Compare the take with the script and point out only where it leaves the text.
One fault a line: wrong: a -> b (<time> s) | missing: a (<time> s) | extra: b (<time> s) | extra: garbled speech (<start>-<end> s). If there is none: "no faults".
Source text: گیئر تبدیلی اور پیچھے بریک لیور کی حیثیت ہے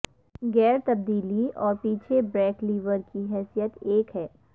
extra: ایک (3.8 s)